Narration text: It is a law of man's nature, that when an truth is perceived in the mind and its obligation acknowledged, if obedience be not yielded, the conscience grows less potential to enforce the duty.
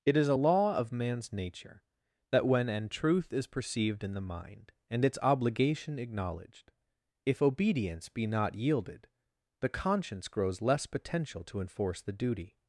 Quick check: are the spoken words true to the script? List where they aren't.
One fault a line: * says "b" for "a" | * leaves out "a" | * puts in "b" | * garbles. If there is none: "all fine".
all fine